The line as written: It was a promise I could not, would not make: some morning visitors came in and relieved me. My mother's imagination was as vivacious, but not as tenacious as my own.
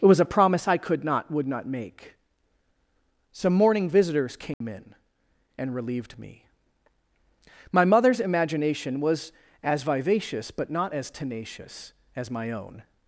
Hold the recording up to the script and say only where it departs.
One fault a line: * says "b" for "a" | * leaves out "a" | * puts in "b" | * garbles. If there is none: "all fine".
all fine